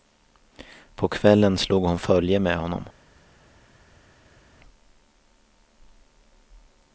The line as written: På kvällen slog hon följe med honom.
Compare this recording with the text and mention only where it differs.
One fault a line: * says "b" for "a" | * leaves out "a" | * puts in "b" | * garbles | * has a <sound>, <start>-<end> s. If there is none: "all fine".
all fine